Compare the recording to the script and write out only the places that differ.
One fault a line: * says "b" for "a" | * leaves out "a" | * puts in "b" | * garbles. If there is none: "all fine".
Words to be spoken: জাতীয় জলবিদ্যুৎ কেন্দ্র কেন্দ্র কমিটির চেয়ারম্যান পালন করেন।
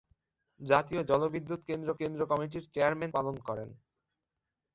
all fine